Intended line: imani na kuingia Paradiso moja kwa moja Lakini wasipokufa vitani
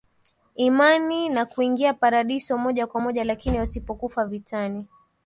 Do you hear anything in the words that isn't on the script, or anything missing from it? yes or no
no